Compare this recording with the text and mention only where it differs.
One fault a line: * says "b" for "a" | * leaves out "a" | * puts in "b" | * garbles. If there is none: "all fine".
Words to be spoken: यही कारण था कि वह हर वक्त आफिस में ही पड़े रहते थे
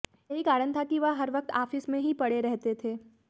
all fine